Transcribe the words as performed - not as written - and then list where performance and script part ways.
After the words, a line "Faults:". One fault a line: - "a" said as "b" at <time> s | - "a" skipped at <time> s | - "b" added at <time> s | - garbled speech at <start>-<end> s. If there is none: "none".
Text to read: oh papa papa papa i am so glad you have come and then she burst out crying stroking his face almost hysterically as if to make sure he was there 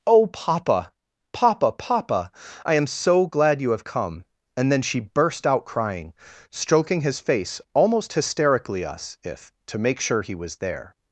oh papa papa papa i am so glad you have come and then she burst out crying stroking his face almost hysterically us if to make sure he was there
Faults:
- "as" said as "us" at 8.9 s